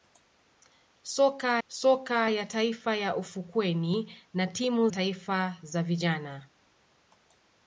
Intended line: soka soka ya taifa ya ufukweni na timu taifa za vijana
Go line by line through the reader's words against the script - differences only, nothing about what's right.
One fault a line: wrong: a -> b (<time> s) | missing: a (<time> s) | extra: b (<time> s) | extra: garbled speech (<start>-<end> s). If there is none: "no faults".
no faults